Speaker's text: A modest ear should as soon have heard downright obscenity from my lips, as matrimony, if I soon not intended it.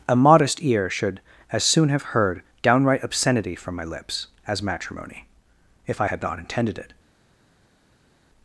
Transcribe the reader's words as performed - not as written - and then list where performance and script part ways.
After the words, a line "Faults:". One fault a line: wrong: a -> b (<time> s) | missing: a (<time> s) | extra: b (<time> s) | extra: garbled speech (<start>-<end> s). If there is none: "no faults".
A modest ear should as soon have heard downright obscenity from my lips, as matrimony, if I had not intended it.
Faults:
wrong: soon -> had (6.0 s)